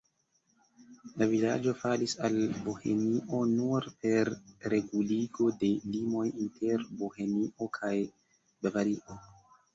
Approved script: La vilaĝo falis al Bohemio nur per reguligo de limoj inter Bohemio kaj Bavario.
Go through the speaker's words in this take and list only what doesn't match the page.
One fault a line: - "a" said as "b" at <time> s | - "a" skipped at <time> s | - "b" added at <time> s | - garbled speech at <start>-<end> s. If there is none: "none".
none